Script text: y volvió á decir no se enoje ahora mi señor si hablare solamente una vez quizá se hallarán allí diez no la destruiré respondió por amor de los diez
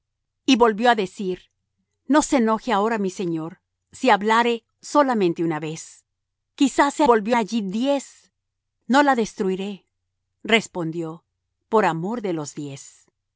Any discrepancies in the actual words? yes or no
yes